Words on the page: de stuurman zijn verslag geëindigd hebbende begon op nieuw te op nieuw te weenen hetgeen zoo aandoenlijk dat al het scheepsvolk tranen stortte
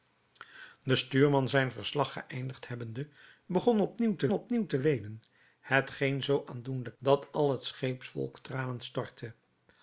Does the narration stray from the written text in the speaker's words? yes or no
no